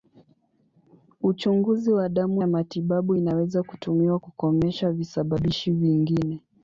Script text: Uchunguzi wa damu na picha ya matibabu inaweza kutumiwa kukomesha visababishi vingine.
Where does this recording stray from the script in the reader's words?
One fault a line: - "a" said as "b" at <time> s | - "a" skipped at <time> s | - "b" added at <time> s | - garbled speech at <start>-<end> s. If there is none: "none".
- "na picha" skipped at 2.4 s